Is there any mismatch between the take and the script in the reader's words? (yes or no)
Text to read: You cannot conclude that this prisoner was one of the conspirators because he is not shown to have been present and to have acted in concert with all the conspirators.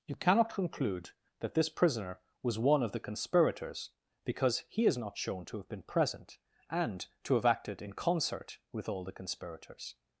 no